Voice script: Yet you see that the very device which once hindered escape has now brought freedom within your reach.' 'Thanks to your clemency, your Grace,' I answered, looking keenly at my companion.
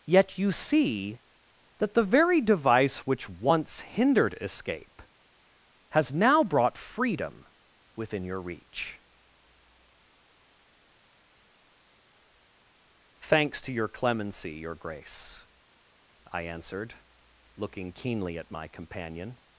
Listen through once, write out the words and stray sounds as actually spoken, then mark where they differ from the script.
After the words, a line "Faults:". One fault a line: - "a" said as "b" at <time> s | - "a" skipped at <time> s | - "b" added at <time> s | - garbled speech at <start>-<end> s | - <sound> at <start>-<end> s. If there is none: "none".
Yet you see that the very device which once hindered escape has now brought freedom within your reach.' 'Thanks to your clemency, your Grace,' I answered, looking keenly at my companion.
Faults:
none